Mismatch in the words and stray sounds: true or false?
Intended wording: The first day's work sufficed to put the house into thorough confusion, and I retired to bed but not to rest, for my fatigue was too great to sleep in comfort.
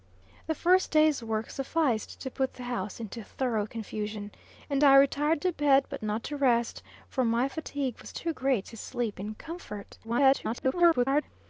true